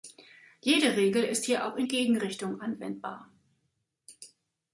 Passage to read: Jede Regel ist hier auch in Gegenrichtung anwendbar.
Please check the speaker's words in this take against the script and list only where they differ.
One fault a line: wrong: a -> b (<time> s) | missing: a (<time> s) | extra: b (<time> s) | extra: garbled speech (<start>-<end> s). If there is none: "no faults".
no faults